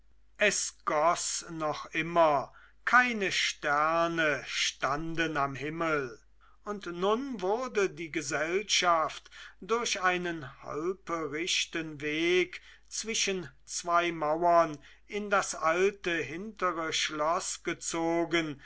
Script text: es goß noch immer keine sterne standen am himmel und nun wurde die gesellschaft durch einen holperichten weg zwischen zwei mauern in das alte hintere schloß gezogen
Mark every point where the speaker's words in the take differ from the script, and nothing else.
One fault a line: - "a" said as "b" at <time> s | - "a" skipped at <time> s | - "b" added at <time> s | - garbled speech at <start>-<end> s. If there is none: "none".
none